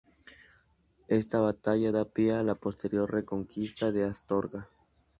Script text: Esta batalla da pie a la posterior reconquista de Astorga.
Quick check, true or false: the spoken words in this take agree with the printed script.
true